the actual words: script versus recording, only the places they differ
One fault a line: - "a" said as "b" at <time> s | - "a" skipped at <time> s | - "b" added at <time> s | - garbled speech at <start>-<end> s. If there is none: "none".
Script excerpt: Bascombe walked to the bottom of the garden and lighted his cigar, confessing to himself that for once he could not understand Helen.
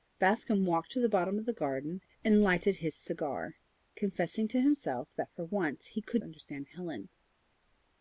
- "not" skipped at 6.2 s